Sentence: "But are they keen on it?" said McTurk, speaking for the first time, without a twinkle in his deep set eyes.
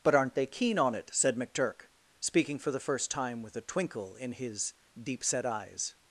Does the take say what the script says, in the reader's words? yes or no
no